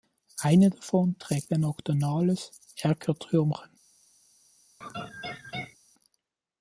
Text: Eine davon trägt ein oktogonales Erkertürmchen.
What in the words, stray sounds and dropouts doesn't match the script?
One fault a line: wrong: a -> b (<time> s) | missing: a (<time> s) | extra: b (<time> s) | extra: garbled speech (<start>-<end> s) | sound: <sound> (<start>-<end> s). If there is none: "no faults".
sound: laugh (4.8-5.8 s)